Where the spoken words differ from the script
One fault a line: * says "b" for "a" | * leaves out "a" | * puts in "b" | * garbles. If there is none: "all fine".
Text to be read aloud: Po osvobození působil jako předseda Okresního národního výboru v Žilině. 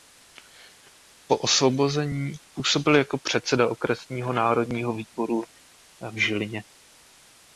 all fine